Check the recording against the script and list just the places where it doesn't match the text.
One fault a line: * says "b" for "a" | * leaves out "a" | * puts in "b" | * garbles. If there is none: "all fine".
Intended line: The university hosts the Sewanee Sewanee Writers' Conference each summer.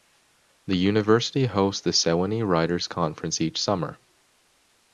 * leaves out "Sewanee"